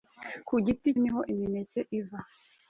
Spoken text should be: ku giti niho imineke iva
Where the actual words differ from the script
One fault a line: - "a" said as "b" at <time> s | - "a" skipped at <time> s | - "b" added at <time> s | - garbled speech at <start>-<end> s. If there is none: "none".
none